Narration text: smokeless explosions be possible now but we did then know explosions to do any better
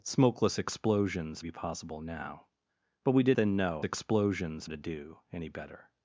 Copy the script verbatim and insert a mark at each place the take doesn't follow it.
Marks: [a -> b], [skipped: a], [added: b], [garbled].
smokeless explosions be possible now but we did then know explosions to do any better